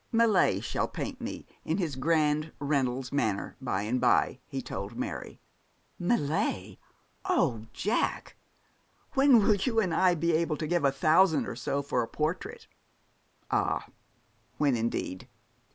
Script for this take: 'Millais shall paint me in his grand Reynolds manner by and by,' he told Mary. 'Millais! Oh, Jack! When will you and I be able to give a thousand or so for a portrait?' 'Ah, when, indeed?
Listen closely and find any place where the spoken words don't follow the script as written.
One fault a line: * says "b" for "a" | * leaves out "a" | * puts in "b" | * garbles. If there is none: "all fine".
all fine